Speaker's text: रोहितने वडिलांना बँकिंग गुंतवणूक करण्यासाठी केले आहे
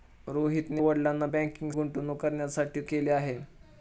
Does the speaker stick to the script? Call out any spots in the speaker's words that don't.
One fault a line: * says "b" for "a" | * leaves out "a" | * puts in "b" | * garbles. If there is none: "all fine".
all fine